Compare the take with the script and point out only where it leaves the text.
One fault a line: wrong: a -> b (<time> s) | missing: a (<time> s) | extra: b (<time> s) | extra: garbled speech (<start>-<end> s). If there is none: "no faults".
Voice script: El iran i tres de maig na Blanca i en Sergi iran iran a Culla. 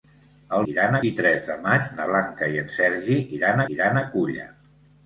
no faults